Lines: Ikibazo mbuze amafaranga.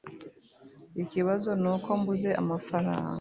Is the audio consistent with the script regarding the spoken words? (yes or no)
no